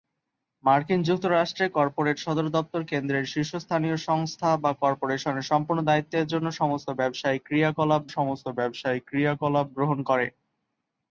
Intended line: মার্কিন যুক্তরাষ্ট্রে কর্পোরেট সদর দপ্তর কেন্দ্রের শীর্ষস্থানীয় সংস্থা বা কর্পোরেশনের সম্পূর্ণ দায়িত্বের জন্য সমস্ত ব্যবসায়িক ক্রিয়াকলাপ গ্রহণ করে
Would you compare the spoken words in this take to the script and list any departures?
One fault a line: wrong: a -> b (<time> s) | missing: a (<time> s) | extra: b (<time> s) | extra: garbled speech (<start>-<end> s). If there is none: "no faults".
extra: সমস্ত ব্যবসায়িক ক্রিয়াকলাপ (8.1 s)